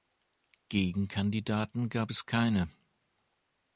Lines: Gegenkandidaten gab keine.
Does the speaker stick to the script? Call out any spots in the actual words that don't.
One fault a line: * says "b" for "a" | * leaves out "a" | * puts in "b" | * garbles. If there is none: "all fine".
* puts in "es"